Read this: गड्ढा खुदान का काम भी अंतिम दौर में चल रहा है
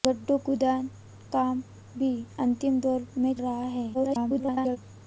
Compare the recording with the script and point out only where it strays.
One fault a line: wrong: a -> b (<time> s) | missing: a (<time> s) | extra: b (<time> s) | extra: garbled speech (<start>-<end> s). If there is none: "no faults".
missing: का (0.9 s)
missing: चल (3.3 s)
extra: garbled speech (3.9-4.8 s)